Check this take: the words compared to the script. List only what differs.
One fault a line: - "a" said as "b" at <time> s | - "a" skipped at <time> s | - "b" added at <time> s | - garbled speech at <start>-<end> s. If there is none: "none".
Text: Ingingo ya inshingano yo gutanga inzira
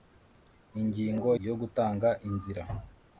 - "ya inshingano" skipped at 1.3 s